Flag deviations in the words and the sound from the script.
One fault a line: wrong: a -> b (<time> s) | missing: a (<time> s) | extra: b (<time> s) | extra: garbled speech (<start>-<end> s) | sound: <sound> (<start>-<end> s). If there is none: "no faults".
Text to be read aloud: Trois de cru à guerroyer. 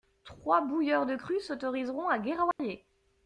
extra: bouilleurs (0.6 s)
extra: s'autoriseront (1.4 s)
sound: dropout (2.5-2.6 s)